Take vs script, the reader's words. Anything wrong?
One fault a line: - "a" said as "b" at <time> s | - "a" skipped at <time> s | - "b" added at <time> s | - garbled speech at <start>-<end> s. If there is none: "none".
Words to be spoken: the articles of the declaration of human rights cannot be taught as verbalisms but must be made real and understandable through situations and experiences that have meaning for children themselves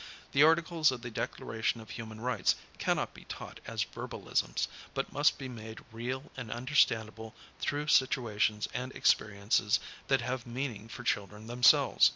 none